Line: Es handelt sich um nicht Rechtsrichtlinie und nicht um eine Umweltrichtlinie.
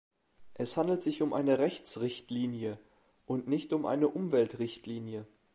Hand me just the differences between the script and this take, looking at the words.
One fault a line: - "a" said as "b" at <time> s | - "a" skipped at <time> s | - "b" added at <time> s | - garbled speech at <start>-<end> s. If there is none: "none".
- "nicht" said as "eine" at 1.3 s